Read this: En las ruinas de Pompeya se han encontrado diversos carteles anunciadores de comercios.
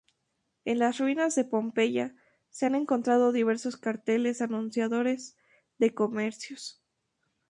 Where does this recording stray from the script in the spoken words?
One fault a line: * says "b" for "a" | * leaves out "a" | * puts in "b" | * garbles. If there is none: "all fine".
all fine